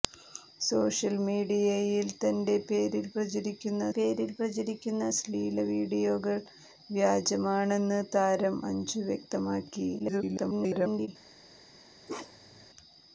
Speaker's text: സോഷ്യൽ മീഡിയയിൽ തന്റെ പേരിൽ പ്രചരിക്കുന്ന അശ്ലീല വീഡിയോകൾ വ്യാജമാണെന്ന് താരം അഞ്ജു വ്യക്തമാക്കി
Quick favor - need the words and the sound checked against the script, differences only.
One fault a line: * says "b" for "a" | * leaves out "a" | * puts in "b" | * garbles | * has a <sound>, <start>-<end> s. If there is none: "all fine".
* puts in "പേരിൽ പ്രചരിക്കുന്ന"
* garbles
* has a bark, 12.1-12.7 s